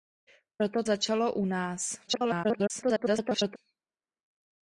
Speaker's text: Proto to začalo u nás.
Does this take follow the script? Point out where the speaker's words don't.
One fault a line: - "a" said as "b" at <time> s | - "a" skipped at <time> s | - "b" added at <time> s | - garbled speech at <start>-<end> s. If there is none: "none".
- "to" skipped at 0.8 s
- garbled speech at 2.1-3.6 s